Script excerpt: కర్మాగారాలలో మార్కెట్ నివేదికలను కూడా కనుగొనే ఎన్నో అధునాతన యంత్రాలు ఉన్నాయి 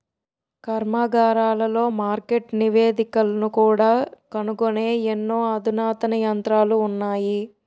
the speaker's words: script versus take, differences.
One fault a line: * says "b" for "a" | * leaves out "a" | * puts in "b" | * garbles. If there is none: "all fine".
all fine